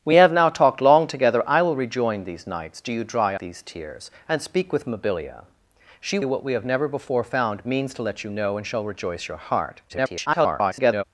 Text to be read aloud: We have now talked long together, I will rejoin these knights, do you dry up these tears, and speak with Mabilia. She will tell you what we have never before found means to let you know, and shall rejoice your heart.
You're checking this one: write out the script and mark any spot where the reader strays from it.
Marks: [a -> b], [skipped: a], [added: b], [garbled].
We have now talked long together, I will rejoin these knights, do you dry [skipped: up] these tears, and speak with Mabilia. She [skipped: will tell] you what we have never before found means to let you know, and shall rejoice your heart. [garbled]